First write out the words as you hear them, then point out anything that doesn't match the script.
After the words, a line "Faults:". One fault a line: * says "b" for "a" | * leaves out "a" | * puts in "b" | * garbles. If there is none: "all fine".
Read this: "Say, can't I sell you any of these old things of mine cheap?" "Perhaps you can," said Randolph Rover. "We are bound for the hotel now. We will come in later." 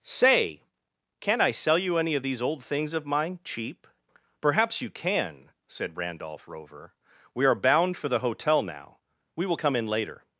"Say, can't I sell you any of these old things of mine cheap?" "Perhaps you can," said Randolph Rover. "We are bound for the hotel now. We will come in later."
Faults:
all fine